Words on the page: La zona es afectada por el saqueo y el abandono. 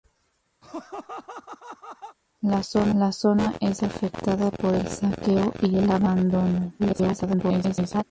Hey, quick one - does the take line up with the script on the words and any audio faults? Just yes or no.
no